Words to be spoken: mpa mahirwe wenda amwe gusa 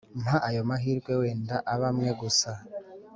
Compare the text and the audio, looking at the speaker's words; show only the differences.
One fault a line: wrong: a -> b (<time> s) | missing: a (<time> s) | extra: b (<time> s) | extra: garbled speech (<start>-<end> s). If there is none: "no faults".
extra: ayo (0.5 s)
extra: abe (1.7 s)